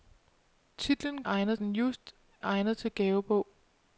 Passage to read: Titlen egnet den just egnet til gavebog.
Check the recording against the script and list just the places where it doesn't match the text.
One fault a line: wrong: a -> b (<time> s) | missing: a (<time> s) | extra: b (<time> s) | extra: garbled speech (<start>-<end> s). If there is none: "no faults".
no faults